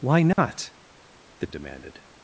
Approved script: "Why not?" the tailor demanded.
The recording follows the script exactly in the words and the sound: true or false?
false